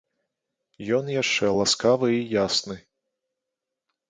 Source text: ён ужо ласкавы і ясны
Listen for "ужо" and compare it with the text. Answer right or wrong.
wrong